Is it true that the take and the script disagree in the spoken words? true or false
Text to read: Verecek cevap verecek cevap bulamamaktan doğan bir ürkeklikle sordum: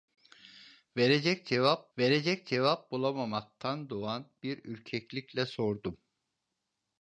false